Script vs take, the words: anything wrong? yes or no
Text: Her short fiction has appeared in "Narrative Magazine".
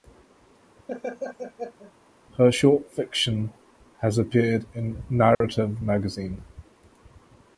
no